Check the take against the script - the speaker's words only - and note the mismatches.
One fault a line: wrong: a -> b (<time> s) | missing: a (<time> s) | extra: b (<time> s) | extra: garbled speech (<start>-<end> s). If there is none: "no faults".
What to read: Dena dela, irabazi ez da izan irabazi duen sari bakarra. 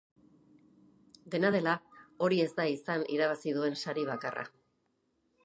wrong: irabazi -> hori (2.3 s)